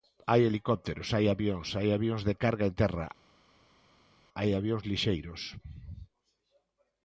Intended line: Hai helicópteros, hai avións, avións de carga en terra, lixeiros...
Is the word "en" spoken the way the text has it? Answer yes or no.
yes